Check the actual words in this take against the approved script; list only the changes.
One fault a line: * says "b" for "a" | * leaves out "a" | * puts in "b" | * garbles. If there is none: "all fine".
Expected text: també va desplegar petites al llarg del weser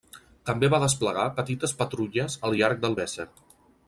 * puts in "patrulles"